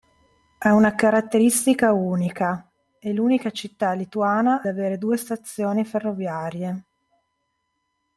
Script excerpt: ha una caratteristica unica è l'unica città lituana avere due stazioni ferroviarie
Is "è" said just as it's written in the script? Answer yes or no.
yes